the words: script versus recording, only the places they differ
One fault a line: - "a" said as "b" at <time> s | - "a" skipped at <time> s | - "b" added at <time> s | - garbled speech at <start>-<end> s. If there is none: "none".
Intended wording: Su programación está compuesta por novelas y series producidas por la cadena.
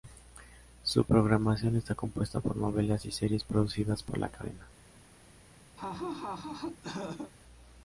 none